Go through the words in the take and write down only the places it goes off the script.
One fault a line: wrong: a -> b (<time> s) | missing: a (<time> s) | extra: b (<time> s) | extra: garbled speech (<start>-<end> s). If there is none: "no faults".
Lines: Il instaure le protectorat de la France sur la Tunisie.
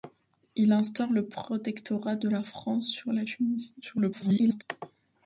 extra: garbled speech (3.8-4.6 s)